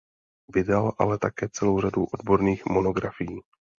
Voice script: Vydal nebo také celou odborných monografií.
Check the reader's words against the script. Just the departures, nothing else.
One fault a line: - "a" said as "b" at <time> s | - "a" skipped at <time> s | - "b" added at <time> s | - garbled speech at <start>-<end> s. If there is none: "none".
- "nebo" said as "ale" at 1.0 s
- "řadu" added at 1.8 s